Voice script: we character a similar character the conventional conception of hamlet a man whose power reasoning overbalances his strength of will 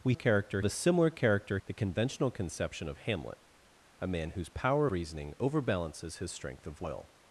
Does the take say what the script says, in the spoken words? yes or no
yes